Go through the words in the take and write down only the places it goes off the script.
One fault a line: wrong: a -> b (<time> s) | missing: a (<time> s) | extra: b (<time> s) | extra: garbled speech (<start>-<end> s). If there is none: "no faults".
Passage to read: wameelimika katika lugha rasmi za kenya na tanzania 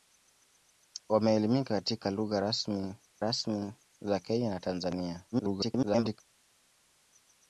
extra: rasmi (3.2 s)
extra: garbled speech (5.3-6.2 s)